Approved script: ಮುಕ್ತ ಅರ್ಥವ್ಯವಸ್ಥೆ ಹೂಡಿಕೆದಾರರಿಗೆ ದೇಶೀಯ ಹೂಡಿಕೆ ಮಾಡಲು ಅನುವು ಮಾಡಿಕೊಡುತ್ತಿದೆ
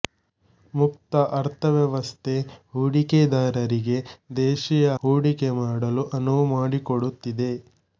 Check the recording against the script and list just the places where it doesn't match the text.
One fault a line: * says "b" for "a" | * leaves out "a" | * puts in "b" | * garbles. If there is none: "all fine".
all fine